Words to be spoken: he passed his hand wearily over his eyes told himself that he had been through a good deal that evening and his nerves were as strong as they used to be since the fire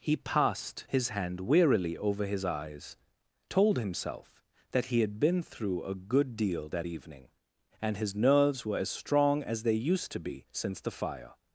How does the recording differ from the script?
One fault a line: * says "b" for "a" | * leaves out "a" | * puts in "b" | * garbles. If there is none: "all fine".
all fine